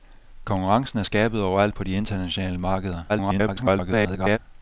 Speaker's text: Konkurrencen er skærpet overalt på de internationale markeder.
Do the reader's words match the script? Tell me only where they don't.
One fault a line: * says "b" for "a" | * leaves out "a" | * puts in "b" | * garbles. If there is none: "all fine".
* garbles